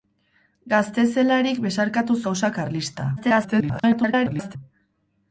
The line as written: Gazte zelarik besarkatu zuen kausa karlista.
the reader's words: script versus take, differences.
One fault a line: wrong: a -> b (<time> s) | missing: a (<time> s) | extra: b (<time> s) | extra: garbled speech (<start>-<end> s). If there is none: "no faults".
missing: zuen (2.2 s)
extra: garbled speech (3.2-4.6 s)